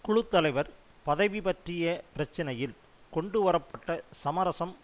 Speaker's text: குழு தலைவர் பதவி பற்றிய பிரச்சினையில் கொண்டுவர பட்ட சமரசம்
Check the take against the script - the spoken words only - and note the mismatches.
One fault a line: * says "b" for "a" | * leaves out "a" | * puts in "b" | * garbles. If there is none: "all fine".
all fine